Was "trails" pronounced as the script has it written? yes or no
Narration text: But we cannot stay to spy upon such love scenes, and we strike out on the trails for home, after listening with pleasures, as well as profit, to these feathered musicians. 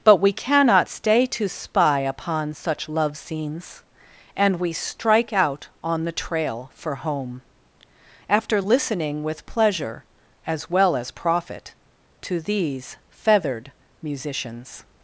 no